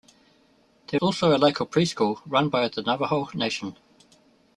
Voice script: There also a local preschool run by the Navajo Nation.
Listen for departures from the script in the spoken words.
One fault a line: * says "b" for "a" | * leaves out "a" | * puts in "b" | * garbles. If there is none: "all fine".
all fine